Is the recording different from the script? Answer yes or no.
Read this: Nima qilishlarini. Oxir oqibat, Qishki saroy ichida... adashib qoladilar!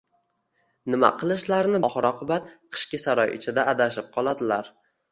no